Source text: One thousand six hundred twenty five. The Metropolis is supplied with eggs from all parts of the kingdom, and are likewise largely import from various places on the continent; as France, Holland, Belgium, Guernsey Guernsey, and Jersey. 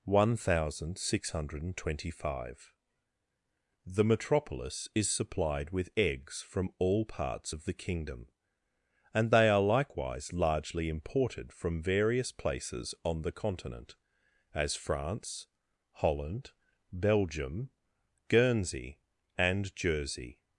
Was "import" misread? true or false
true